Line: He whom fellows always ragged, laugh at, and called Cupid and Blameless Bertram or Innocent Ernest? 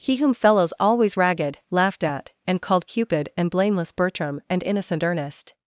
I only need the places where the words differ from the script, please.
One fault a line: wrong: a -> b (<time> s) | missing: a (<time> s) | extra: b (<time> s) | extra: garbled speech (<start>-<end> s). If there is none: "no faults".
wrong: laugh -> laughed (1.7 s)
wrong: or -> and (4.5 s)